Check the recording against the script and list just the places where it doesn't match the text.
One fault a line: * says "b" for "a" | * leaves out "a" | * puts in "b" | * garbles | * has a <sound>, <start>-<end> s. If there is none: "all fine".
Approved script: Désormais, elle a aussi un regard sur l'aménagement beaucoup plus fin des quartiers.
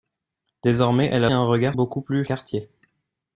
* leaves out "aussi"
* leaves out "sur l'aménagement"
* leaves out "fin des"